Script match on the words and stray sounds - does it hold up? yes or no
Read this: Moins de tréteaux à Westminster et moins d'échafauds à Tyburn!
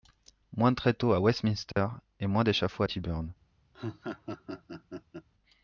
no